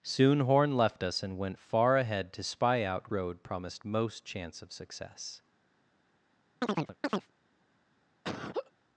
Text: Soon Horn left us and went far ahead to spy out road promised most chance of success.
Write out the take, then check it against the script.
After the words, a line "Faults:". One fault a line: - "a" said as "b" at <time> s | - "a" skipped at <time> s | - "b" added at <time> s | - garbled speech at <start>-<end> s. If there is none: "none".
Soon Horn left us and went far ahead to spy out road promised most chance of success.
Faults:
none